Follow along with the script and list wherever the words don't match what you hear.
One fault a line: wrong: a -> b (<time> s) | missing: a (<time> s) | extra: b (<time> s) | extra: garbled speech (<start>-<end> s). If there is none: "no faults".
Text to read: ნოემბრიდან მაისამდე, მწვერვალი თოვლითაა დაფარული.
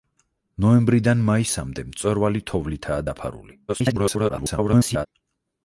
extra: garbled speech (3.7-5.1 s)